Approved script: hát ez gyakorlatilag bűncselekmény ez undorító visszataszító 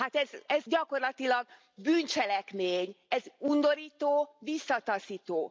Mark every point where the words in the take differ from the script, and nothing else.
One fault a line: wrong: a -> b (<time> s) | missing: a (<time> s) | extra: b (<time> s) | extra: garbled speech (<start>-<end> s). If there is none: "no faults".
no faults